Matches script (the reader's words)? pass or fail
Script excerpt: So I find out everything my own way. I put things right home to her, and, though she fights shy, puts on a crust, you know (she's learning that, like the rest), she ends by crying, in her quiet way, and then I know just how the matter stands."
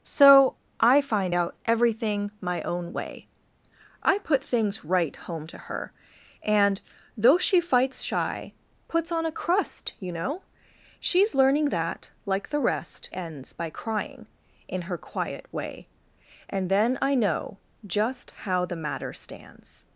fail